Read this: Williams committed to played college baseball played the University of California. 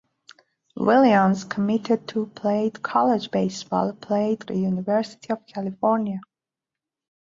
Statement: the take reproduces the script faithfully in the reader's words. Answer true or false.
true